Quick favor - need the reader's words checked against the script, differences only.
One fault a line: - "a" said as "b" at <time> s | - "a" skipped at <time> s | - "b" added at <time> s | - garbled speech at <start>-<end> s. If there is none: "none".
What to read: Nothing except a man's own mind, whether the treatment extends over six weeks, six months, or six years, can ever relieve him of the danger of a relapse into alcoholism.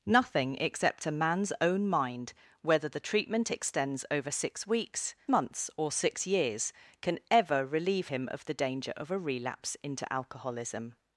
- "six" skipped at 5.1 s